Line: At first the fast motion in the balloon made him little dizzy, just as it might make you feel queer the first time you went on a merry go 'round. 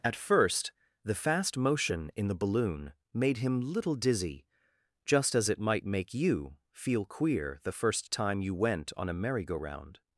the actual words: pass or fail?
pass